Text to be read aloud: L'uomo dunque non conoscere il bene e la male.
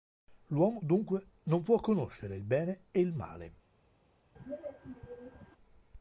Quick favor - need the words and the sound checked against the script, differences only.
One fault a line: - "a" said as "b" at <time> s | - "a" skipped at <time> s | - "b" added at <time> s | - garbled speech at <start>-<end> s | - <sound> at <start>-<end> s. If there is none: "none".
- "può" added at 1.6 s
- "la" said as "il" at 3.0 s
- throat clearing at 4.4-5.6 s